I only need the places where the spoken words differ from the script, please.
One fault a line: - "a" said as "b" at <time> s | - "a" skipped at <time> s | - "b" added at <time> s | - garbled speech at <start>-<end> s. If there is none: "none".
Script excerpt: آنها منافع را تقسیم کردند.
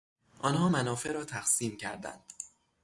none